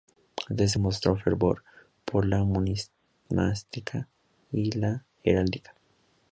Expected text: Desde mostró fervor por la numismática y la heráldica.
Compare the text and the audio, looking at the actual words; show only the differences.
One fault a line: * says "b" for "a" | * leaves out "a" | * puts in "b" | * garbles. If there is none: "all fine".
all fine